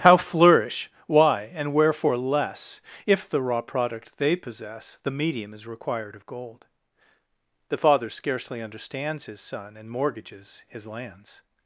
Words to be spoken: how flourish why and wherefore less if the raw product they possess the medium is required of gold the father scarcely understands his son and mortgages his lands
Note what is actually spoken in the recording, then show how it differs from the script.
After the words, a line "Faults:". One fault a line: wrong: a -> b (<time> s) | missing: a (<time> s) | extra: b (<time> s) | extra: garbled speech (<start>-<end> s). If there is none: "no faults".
how flourish why and wherefore less if the raw product they possess the medium is required of gold the father scarcely understands his son and mortgages his lands
Faults:
no faults